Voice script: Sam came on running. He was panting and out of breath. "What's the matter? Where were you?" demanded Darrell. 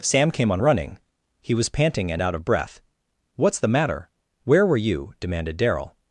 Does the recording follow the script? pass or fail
pass